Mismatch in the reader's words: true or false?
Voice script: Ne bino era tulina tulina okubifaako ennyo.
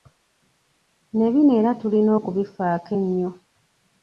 true